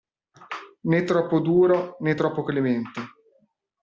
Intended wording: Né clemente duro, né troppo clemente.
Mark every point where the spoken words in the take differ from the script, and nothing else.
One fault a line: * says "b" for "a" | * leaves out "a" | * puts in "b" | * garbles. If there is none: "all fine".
* says "troppo" for "clemente"